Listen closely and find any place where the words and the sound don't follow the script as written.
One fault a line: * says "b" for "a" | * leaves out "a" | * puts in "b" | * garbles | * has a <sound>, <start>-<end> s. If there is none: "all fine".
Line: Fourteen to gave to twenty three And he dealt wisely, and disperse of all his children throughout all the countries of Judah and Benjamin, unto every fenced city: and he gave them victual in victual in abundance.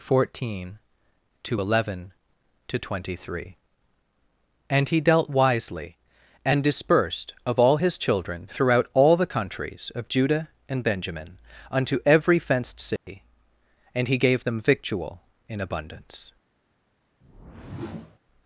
* says "eleven" for "gave"
* says "dispersed" for "disperse"
* has a dropout, 13.0-13.1 s
* leaves out "victual in"
* has a whoosh, 17.2-18.2 s